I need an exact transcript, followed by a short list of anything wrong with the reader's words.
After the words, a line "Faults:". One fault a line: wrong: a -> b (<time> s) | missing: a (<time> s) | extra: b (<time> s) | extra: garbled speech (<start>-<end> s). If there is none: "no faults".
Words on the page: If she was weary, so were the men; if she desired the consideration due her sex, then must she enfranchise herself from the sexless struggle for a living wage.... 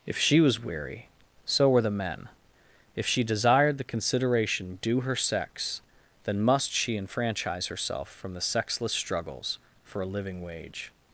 If she was weary, so were the men; if she desired the consideration due her sex, then must she enfranchise herself from the sexless struggles for a living wage....
Faults:
wrong: struggle -> struggles (8.9 s)